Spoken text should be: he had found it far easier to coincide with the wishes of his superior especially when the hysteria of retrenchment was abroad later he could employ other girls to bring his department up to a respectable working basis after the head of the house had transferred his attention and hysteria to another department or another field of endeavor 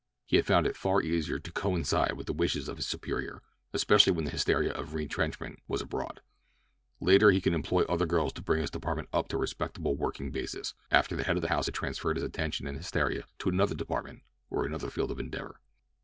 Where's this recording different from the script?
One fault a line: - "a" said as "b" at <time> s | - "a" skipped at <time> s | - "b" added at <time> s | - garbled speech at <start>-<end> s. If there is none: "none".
none